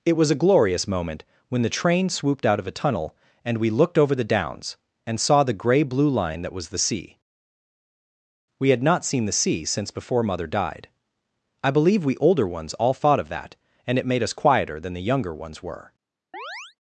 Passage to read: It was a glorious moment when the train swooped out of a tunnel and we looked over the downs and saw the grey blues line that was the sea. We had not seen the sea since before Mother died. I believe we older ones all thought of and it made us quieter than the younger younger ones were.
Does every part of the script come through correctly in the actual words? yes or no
no